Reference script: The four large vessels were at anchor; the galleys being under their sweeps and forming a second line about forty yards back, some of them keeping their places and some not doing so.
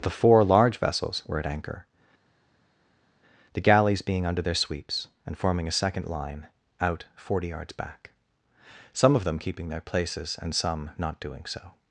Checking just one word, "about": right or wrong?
wrong